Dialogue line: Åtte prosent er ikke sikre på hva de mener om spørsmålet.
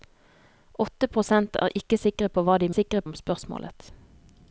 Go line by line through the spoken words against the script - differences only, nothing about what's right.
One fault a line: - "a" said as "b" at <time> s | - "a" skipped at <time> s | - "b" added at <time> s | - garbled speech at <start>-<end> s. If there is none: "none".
- "mener" said as "sikre" at 2.8 s